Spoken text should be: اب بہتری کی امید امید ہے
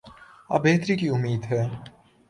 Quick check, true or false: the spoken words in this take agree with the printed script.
false